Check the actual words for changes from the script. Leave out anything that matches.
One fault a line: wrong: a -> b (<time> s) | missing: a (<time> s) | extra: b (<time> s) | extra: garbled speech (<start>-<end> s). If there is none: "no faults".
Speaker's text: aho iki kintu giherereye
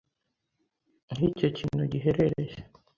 wrong: iki -> icyo (1.3 s)